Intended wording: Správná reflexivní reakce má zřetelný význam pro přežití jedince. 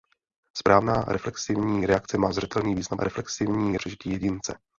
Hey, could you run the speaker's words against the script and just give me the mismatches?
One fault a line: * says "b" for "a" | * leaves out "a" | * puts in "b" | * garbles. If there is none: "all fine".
* says "reflexivní" for "pro"